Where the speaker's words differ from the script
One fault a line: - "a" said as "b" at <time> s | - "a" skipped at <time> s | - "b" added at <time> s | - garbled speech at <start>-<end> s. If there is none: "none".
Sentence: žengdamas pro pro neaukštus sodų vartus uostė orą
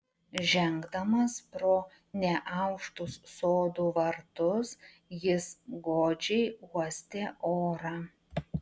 - "pro" skipped at 1.7 s
- "jis godžiai" added at 5.3 s